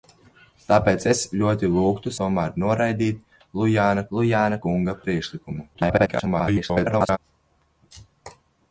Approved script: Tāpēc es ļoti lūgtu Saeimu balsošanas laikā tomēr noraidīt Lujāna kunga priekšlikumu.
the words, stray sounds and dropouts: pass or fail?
fail